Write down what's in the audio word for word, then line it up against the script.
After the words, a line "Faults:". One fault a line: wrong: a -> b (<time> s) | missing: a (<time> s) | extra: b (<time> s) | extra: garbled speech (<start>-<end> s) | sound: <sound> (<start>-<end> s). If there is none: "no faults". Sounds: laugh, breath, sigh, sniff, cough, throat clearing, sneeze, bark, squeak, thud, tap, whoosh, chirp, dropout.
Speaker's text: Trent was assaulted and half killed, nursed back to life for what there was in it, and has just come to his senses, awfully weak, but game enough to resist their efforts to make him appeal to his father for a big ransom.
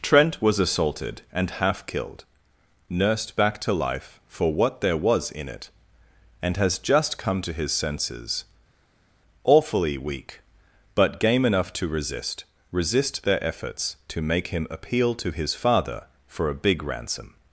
Trent was assaulted and half killed, nursed back to life for what there was in it, and has just come to his senses, awfully weak, but game enough to resist resist their efforts to make him appeal to his father for a big ransom.
Faults:
extra: resist (12.7 s)